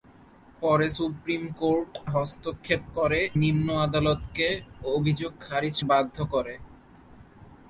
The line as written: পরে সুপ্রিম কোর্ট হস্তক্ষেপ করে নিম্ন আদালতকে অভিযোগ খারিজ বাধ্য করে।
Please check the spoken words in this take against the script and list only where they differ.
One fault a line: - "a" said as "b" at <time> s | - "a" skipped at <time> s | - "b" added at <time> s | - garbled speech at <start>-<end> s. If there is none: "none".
none